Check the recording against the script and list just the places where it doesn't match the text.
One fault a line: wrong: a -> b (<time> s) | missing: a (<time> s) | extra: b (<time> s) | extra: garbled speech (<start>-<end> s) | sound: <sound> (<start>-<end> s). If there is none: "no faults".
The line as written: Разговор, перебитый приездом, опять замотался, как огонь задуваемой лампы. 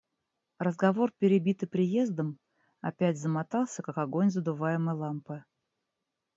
no faults